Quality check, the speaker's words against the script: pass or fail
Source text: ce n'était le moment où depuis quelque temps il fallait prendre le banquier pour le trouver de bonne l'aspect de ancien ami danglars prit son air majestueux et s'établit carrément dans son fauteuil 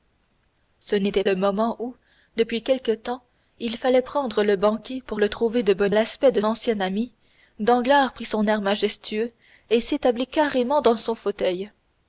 pass